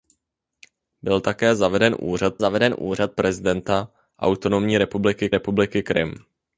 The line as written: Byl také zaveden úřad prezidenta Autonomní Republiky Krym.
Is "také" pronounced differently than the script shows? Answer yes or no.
no